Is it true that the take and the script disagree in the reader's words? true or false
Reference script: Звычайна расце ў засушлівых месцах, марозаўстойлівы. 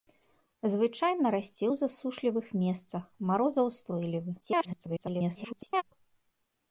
true